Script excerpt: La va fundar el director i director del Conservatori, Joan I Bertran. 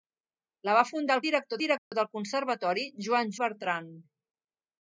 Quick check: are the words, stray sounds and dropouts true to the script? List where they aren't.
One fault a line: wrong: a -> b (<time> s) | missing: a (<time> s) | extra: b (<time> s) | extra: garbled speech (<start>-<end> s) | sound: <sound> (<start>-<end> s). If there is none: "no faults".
sound: dropout (1.8-1.9 s)